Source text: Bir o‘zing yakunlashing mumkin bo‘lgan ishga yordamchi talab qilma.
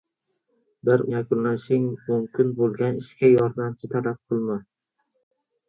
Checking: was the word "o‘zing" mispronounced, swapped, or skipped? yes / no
yes